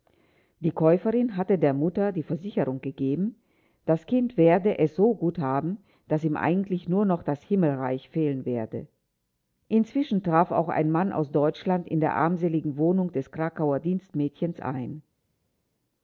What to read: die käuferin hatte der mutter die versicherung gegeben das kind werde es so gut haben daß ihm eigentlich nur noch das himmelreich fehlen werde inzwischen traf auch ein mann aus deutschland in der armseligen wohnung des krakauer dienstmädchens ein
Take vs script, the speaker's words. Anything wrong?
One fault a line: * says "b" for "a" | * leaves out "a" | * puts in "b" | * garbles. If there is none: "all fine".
all fine